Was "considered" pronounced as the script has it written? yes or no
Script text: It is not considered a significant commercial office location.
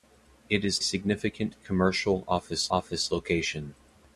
no